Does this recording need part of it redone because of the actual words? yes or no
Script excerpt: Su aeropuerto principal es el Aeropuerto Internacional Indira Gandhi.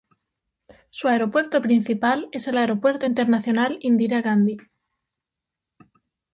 no